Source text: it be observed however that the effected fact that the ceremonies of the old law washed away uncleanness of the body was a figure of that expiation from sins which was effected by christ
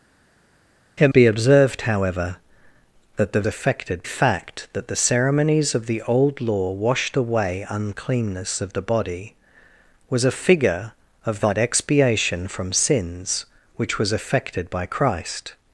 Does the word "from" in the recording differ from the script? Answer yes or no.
no